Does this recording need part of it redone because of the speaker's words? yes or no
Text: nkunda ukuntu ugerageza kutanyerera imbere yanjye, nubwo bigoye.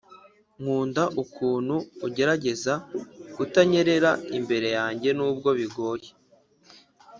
no